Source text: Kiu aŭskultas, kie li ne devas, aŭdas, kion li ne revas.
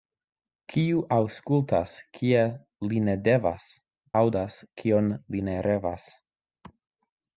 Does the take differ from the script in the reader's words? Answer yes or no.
no